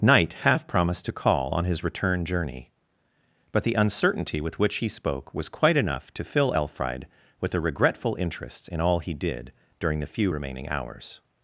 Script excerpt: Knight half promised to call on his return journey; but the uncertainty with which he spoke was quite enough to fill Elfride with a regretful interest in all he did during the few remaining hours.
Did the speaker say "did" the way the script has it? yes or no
yes